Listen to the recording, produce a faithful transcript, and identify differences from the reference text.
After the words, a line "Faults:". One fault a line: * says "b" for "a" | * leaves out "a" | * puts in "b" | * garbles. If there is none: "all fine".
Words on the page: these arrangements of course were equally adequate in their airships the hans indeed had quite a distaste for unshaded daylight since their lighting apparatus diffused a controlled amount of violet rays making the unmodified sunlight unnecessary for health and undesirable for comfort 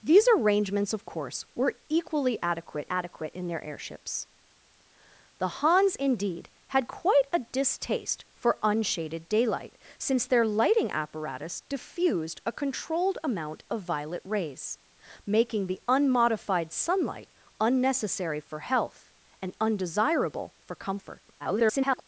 these arrangements of course were equally adequate adequate in their airships the hans indeed had quite a distaste for unshaded daylight since their lighting apparatus diffused a controlled amount of violet rays making the unmodified sunlight unnecessary for health and undesirable for comfort [garbled]
Faults:
* puts in "adequate"
* garbles